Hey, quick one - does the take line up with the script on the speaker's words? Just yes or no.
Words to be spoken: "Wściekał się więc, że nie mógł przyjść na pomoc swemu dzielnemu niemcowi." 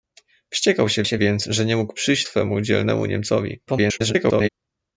no